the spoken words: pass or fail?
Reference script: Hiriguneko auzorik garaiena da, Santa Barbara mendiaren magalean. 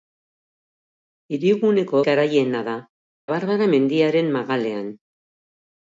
fail